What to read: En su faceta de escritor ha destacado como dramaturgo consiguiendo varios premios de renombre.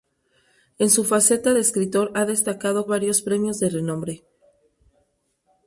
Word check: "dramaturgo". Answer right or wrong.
wrong